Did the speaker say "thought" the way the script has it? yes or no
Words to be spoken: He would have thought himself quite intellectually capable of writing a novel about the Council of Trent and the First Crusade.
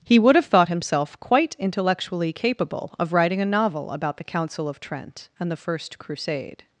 yes